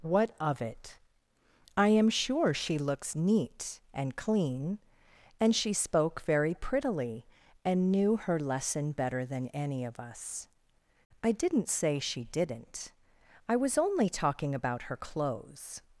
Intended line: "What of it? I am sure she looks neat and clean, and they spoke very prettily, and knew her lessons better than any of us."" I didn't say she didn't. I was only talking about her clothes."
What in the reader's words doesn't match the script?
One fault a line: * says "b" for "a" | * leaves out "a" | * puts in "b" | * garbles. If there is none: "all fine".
* says "she" for "they"
* says "lesson" for "lessons"